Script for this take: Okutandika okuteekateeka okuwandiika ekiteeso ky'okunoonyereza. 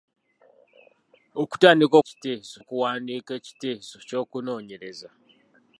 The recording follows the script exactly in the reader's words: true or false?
false